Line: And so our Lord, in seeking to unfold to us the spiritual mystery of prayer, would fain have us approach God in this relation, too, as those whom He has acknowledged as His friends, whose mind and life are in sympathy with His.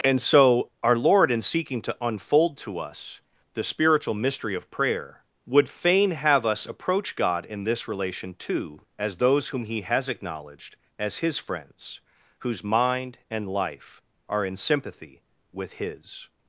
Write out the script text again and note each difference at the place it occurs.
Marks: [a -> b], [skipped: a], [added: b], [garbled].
And so our Lord, in seeking to unfold to us the spiritual mystery of prayer, would fain have us approach God in this relation, too, as those whom He has acknowledged as His friends, whose mind and life are in sympathy with His.